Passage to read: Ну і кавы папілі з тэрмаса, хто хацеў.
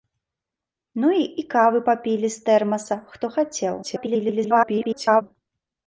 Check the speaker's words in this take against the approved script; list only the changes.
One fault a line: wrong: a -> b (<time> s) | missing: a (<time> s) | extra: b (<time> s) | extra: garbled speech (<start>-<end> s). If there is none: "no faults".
extra: garbled speech (3.8-5.2 s)